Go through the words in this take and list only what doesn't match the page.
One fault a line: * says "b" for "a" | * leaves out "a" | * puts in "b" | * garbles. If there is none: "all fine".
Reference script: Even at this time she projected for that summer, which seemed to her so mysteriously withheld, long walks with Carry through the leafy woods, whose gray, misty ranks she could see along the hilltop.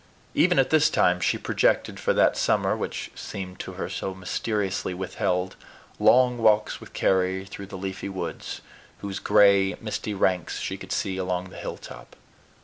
all fine